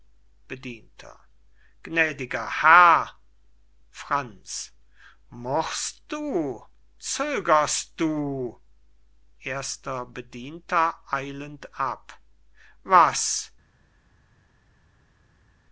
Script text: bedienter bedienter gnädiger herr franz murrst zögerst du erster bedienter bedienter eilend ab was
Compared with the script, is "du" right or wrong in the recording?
right